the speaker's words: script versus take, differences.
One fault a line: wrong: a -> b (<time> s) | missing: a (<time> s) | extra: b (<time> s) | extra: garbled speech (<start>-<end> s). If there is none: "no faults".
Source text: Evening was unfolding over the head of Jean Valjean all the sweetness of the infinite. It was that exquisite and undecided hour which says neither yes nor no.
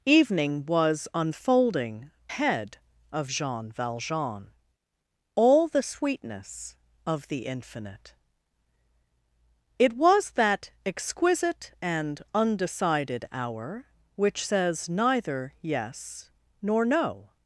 missing: over the (2.1 s)